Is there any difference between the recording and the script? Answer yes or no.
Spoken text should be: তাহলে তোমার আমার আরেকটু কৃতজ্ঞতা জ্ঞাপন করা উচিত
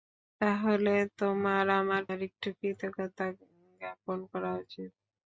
no